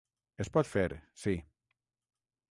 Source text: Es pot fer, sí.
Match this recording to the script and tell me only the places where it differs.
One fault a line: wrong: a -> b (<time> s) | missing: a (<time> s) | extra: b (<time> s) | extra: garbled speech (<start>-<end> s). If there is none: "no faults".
no faults